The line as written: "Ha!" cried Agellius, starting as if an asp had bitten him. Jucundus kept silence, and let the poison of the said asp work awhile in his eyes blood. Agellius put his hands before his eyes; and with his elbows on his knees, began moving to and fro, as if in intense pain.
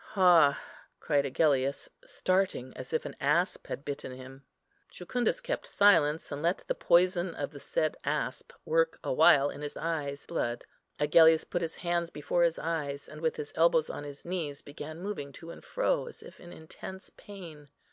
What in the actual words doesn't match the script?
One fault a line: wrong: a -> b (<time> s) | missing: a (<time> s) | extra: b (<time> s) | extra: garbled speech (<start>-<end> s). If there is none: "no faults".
no faults